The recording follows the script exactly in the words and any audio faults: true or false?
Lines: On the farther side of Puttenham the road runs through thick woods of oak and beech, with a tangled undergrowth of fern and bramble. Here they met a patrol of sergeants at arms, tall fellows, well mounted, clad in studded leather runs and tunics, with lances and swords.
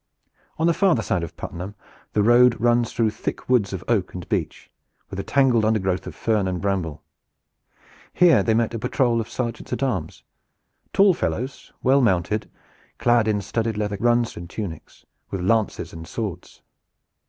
true